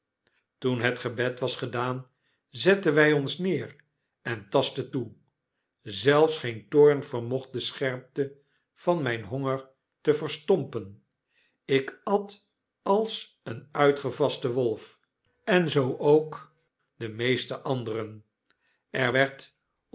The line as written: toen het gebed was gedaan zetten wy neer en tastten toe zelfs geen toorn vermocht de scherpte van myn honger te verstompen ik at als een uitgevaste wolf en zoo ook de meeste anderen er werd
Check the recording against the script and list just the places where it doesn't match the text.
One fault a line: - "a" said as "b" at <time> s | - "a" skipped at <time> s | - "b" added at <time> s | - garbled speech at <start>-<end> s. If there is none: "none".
- "ons" added at 3.1 s